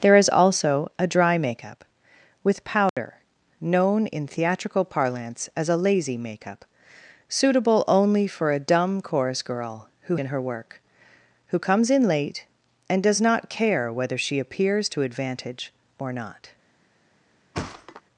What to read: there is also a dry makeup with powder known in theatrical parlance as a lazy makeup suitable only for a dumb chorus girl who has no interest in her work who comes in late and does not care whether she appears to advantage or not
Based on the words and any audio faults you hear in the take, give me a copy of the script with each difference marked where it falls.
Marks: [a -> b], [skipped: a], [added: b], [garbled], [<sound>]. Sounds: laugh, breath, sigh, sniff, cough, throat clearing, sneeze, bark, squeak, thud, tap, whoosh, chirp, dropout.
there is also a dry makeup with powder [dropout] known in theatrical parlance as a lazy makeup suitable only for a dumb chorus girl who [skipped: has no interest] in her work who comes in late and does not care whether she appears to advantage or not [thud]